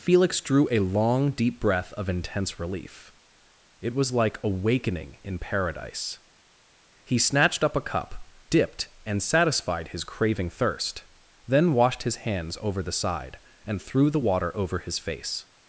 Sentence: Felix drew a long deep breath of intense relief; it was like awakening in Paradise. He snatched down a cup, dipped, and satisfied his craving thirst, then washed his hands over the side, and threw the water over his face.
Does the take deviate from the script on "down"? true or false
true